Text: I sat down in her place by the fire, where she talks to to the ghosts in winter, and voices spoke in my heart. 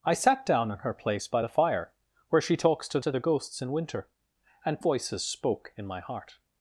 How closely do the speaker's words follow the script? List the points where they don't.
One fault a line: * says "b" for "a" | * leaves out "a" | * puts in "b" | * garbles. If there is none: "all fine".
all fine